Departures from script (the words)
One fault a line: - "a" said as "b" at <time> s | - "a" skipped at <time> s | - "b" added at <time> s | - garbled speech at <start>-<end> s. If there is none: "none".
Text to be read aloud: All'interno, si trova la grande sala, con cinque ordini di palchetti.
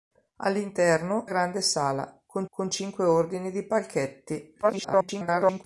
- "si trova la" skipped at 1.2 s
- "con" added at 2.5 s
- garbled speech at 4.6-5.6 s